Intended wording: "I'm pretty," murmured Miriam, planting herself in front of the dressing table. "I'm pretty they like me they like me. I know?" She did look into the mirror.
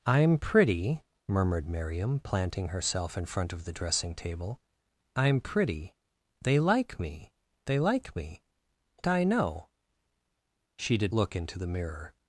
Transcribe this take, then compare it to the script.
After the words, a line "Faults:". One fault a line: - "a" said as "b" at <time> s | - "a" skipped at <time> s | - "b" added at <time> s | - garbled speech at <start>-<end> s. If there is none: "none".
"I'm pretty," murmured Miriam, planting herself in front of the dressing table. "I'm pretty they like me they like me. I know?" She did look into the mirror.
Faults:
none